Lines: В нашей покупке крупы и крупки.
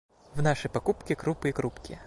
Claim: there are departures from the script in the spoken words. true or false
false